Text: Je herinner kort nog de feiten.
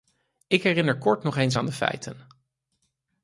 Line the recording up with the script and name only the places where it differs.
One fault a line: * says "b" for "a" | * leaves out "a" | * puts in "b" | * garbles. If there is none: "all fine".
* says "Ik" for "Je"
* puts in "eens aan"